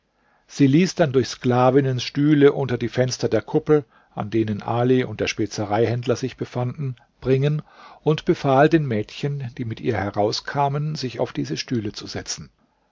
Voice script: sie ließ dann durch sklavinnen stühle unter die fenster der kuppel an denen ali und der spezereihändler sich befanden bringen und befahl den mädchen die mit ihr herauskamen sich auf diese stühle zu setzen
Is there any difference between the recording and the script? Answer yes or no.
no